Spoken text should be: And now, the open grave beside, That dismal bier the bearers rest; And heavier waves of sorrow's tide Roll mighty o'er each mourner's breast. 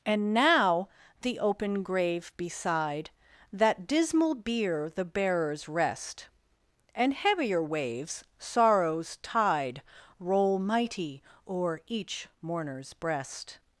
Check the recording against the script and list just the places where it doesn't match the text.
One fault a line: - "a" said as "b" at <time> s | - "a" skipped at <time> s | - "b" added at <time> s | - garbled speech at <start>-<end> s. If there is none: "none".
- "of" skipped at 8.2 s